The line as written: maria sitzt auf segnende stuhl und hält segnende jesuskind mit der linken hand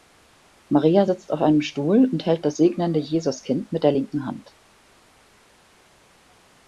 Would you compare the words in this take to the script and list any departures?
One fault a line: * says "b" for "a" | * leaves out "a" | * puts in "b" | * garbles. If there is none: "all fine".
* says "einem" for "segnende"
* puts in "das"